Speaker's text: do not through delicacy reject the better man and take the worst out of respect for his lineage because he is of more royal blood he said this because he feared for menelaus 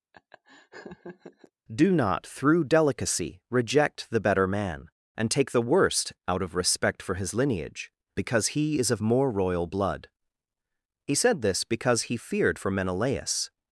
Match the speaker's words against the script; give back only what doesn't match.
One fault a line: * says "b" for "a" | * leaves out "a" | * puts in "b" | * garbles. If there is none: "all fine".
all fine